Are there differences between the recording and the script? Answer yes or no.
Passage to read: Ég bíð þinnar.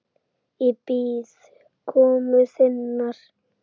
yes